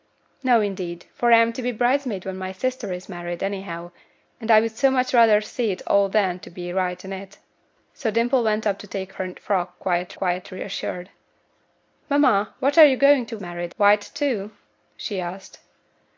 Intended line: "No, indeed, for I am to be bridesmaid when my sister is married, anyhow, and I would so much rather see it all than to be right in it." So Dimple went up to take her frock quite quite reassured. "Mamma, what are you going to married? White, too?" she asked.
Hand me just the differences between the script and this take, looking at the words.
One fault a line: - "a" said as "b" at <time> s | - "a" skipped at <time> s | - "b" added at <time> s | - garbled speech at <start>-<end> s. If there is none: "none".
none